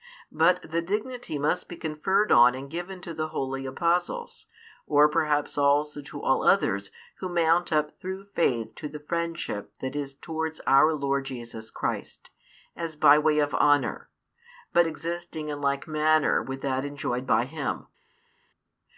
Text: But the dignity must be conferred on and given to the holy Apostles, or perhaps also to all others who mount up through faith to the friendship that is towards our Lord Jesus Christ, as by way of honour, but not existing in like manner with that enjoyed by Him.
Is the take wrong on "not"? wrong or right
wrong